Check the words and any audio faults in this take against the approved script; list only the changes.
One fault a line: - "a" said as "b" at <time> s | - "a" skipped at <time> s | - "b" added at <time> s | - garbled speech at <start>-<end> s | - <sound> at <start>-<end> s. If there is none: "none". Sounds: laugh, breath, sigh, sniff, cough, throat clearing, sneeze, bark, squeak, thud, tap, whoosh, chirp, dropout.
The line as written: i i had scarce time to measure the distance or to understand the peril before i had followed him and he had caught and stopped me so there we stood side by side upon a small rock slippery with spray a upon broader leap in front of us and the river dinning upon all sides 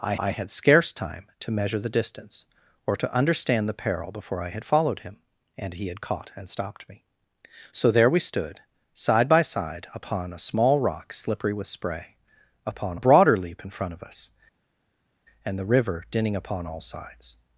none